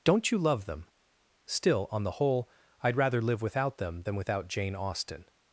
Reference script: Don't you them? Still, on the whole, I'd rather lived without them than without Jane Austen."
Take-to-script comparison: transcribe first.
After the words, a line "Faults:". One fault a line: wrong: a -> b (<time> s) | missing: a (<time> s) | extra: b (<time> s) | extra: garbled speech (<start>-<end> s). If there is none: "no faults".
Don't you love them? Still, on the whole, I'd rather live without them than without Jane Austen."
Faults:
extra: love (0.4 s)
wrong: lived -> live (3.2 s)